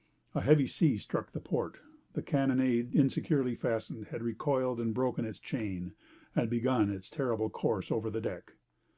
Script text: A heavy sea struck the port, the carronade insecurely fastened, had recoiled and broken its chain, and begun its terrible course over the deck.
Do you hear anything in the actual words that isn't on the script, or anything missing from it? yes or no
no